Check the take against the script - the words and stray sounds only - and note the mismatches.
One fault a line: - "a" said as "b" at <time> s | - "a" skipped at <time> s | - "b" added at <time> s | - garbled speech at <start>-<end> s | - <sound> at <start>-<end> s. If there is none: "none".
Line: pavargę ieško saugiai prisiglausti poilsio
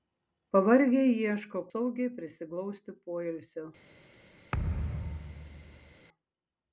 - thud at 4.5-6.0 s